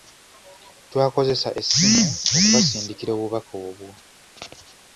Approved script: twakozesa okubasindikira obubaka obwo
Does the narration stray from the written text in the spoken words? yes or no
yes